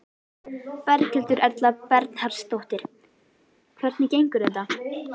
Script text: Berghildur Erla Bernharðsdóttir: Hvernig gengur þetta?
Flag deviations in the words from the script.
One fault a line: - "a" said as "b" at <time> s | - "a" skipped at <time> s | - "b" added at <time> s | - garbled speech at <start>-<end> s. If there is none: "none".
none